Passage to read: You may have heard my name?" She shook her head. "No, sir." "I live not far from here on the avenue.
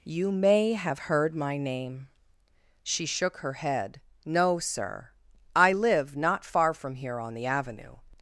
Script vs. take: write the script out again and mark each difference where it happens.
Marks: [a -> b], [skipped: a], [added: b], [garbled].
You may have heard my name?" She shook her head. "No, sir." "I live not far from here on the avenue.